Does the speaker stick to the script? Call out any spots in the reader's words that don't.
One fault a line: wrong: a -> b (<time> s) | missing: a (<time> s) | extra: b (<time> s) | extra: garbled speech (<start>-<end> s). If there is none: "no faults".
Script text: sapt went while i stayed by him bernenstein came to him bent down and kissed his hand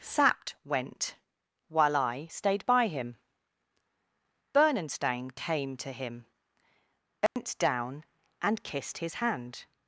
no faults